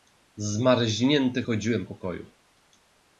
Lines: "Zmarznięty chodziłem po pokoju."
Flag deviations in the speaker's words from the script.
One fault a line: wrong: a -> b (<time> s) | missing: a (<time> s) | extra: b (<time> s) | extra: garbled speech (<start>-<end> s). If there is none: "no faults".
missing: po (1.8 s)